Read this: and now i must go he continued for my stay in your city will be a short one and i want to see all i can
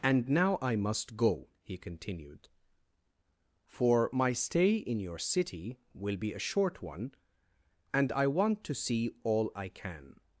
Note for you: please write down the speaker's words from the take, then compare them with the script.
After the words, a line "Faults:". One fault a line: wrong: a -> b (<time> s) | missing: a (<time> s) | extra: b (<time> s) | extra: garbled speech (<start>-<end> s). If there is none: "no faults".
and now i must go he continued for my stay in your city will be a short one and i want to see all i can
Faults:
no faults